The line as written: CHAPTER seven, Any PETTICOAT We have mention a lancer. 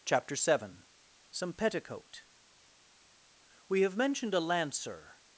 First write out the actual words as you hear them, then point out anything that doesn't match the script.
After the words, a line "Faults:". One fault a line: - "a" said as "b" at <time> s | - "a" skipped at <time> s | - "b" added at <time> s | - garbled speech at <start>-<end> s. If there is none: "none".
CHAPTER seven, SOME PETTICOAT We have mentioned a lancer.
Faults:
- "Any" said as "SOME" at 1.3 s
- "mention" said as "mentioned" at 4.0 s